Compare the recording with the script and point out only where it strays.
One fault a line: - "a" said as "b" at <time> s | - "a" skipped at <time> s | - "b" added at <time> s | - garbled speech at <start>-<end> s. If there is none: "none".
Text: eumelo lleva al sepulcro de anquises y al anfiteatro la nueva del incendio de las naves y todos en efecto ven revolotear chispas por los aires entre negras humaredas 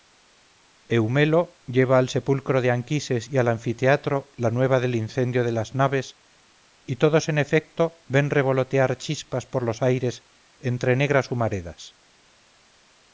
none